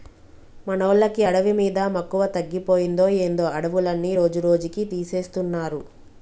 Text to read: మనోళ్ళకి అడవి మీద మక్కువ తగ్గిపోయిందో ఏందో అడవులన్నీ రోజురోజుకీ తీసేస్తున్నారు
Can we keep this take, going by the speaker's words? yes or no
yes